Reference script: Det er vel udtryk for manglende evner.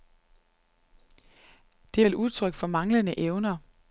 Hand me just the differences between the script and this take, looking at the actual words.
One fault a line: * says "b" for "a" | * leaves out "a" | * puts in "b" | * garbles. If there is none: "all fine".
all fine